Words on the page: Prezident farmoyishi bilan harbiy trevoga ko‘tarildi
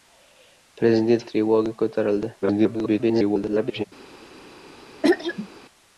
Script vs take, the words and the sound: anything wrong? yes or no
yes